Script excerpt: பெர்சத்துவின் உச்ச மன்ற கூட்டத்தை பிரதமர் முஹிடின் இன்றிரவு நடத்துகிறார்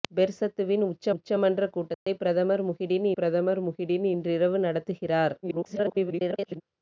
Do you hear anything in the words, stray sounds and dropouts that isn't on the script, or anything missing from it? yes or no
yes